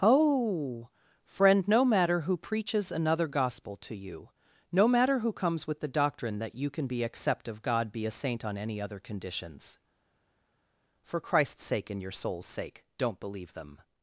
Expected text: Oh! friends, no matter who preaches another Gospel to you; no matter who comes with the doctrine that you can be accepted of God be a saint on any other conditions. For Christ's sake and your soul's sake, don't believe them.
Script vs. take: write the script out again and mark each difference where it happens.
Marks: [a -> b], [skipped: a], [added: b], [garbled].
Oh! [friends, -> friend] no matter who preaches another Gospel to you; no matter who comes with the doctrine that you can be [accepted -> accept] of God be a saint on any other conditions. For Christ's sake and your soul's sake, don't believe them.